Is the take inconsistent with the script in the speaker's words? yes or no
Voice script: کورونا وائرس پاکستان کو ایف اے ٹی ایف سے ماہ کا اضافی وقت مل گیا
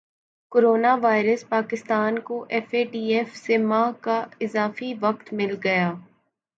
no